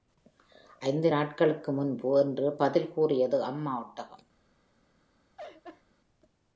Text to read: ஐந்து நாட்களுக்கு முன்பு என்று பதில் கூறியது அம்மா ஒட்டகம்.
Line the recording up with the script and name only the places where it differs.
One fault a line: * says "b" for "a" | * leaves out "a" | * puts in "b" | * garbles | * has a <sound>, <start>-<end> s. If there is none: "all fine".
* has a laugh, 5.4-5.8 s